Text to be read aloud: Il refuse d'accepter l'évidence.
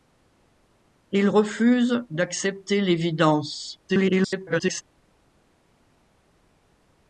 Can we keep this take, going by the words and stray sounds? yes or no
no